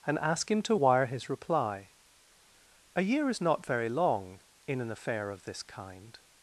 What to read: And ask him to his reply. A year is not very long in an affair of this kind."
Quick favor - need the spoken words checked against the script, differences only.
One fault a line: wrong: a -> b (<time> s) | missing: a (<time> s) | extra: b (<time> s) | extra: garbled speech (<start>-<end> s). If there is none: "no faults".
extra: wire (0.7 s)